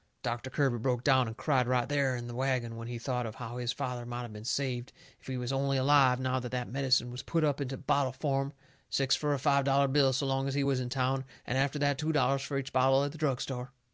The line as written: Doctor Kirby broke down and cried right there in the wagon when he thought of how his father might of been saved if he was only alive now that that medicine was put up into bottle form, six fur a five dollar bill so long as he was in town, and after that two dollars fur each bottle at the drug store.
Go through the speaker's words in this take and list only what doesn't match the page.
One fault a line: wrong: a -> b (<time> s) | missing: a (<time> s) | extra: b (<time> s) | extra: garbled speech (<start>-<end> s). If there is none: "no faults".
no faults